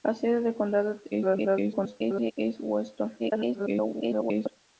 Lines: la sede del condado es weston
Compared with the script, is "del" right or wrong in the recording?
right